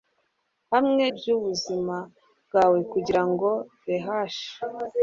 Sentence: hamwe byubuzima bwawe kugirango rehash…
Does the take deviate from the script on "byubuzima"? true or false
false